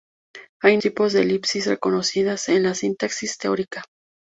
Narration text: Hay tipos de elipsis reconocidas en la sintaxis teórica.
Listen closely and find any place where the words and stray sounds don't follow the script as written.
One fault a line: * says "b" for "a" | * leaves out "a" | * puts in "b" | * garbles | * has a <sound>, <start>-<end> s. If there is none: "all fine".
all fine